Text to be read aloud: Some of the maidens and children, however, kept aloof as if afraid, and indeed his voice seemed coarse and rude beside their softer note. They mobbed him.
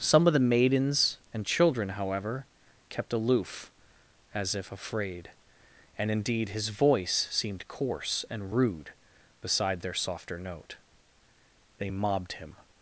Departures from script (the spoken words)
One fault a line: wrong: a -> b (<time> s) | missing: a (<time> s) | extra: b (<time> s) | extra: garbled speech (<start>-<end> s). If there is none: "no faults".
no faults